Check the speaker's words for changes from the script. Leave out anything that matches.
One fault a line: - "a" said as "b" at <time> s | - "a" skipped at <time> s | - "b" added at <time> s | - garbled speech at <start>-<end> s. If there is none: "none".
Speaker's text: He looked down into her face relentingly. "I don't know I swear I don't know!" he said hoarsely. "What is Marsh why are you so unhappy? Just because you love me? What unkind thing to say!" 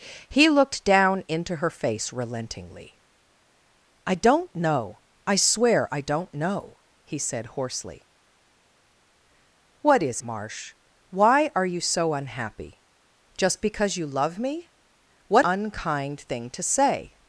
none